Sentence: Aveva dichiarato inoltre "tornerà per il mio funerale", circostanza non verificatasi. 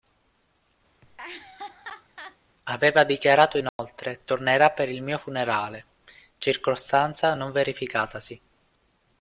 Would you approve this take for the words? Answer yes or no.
yes